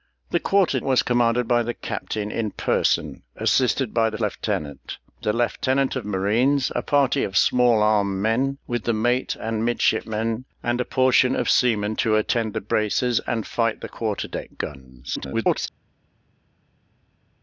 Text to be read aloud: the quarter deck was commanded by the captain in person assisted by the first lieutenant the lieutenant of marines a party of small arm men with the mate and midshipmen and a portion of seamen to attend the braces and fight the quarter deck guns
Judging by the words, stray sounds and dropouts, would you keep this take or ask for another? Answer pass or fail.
fail